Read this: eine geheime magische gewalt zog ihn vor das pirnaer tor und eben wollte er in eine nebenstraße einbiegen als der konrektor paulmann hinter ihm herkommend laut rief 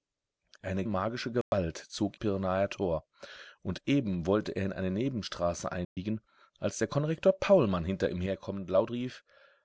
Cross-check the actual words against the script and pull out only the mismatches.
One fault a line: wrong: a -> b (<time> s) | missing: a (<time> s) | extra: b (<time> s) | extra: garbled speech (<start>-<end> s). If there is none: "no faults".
missing: geheime (0.8 s)
missing: ihn vor das (2.2 s)